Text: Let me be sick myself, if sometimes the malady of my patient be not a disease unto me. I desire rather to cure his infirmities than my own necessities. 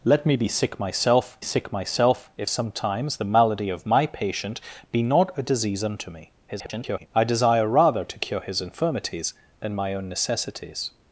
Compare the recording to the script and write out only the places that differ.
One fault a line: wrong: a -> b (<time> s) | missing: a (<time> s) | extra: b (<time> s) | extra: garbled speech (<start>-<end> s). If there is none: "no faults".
extra: sick myself (1.4 s)
extra: garbled speech (6.5-7.1 s)